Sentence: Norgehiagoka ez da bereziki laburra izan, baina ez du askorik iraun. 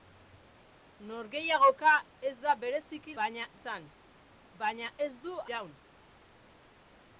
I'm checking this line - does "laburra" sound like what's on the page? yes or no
no